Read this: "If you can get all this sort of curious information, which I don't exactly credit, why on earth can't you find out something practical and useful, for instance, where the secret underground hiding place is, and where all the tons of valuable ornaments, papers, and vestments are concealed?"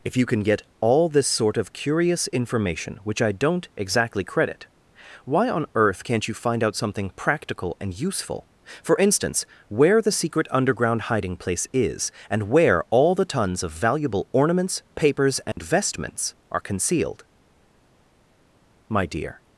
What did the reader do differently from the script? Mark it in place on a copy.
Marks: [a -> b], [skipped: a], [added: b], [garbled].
"If you can get all this sort of curious information, which I don't exactly credit, why on earth can't you find out something practical and useful, for instance, where the secret underground hiding place is, and where all the tons of valuable ornaments, papers, and vestments are concealed?" [added: My dear]